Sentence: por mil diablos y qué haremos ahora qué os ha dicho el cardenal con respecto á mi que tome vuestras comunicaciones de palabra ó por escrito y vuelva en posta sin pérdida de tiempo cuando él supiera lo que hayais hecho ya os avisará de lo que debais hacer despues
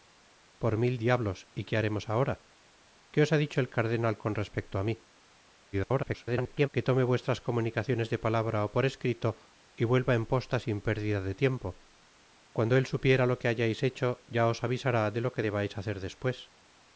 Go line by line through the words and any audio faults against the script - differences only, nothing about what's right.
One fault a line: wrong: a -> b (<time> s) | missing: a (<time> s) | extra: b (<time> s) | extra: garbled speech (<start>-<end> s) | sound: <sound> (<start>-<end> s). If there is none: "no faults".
extra: garbled speech (5.7-6.7 s)